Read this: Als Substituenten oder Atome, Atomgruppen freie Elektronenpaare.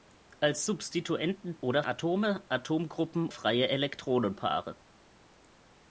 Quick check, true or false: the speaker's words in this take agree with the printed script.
true